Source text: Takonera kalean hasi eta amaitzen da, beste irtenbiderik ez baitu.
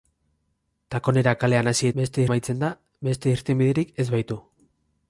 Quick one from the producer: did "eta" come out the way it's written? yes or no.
no